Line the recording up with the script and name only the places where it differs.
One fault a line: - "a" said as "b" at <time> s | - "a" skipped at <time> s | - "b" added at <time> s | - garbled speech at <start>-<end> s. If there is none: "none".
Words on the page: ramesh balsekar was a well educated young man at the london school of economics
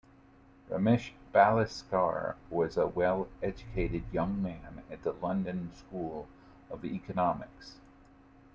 none